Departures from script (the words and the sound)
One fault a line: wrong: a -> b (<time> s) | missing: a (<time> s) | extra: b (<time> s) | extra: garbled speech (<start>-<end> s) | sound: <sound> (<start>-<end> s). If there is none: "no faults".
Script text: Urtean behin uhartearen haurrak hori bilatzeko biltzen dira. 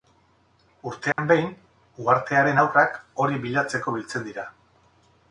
sound: dropout (1.1-1.2 s)